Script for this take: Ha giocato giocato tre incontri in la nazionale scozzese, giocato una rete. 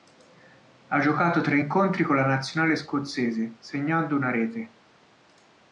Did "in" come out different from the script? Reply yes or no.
yes